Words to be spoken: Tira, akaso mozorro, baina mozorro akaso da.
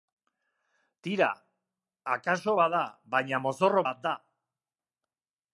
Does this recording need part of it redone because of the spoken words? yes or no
yes